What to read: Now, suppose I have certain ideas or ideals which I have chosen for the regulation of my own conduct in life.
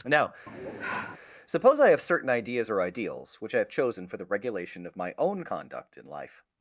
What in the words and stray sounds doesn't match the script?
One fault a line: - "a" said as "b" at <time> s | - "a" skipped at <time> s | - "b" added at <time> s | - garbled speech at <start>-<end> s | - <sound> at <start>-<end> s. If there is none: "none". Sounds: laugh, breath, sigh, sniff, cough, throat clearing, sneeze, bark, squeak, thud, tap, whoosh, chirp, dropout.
- sigh at 0.5-1.2 s